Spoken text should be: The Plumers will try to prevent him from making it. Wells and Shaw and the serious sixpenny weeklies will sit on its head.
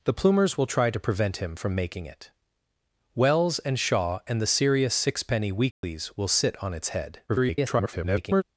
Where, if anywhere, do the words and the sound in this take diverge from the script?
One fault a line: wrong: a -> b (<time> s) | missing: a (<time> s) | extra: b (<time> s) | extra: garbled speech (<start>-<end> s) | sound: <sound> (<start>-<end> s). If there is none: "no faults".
sound: dropout (5.7-5.8 s)
extra: garbled speech (7.3-8.4 s)